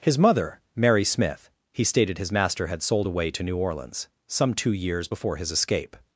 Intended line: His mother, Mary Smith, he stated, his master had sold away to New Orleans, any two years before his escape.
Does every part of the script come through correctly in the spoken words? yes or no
no